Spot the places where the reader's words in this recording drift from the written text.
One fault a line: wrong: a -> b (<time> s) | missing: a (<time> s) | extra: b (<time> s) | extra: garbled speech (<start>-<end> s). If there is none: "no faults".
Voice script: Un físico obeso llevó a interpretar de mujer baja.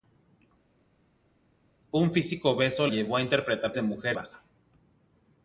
no faults